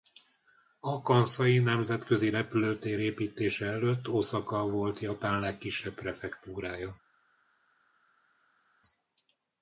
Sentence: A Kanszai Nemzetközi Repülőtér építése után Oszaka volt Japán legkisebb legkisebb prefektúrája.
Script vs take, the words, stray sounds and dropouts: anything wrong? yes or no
yes